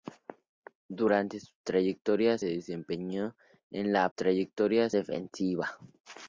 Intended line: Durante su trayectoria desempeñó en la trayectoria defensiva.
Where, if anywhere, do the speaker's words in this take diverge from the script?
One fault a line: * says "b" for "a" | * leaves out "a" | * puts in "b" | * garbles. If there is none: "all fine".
all fine